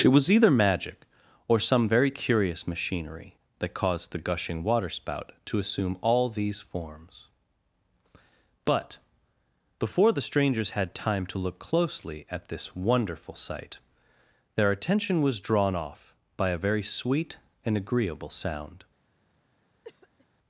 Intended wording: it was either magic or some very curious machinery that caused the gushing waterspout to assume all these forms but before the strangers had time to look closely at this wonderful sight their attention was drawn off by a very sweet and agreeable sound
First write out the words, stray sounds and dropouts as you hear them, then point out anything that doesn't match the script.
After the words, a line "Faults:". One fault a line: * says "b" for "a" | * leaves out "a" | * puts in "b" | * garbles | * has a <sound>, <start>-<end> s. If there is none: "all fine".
it was either magic or some very curious machinery that caused the gushing waterspout to assume all these forms but before the strangers had time to look closely at this wonderful sight their attention was drawn off by a very sweet and agreeable sound
Faults:
* has a cough, 19.8-20.3 s